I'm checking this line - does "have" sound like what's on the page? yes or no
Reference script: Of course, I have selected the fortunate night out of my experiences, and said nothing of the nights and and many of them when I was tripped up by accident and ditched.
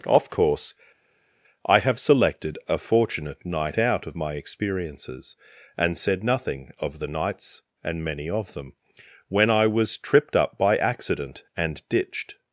yes